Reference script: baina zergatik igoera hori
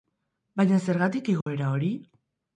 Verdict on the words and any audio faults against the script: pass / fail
fail